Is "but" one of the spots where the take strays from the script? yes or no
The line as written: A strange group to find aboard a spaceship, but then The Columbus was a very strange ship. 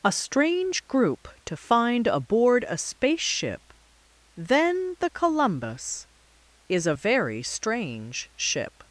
yes